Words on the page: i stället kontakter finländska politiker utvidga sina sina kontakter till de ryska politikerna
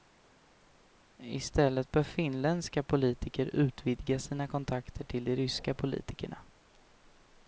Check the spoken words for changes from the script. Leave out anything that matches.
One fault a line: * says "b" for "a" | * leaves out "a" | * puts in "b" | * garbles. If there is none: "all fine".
* says "bör" for "kontakter"
* leaves out "sina"